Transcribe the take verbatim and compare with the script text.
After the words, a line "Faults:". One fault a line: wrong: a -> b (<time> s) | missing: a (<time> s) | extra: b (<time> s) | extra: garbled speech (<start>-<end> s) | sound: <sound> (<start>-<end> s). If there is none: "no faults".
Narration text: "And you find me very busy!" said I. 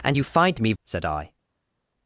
"And you find me!" said I.
Faults:
missing: very busy (0.7 s)